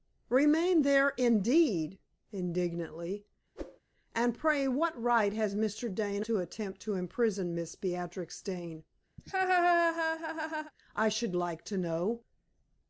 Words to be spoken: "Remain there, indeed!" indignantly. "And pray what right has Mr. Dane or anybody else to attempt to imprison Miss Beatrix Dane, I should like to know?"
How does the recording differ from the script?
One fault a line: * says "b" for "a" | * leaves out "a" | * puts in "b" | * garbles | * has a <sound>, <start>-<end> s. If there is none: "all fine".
* has a whoosh, 3.6-3.8 s
* leaves out "or anybody else"
* has a laugh, 9.2-10.7 s